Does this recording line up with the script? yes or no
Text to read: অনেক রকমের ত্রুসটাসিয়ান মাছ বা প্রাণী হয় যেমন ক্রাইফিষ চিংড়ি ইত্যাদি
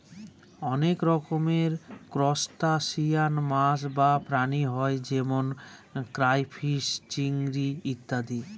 yes